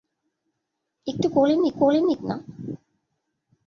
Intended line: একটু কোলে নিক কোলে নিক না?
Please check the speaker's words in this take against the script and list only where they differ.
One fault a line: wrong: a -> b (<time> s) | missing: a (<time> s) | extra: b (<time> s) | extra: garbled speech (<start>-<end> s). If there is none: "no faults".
no faults